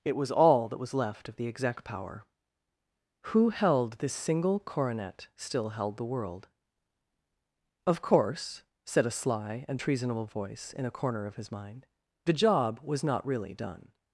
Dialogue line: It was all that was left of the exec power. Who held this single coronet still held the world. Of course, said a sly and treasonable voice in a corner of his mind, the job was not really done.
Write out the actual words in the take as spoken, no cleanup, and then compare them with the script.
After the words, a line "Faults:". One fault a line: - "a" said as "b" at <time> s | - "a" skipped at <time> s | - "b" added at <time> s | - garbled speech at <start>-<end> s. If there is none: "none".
It was all that was left of the exec power. Who held this single coronet still held the world. Of course, said a sly and treasonable voice in a corner of his mind, the job was not really done.
Faults:
none